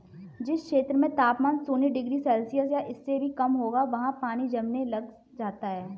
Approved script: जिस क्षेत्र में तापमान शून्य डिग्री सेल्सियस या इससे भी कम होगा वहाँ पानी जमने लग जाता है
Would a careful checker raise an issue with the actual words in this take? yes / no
no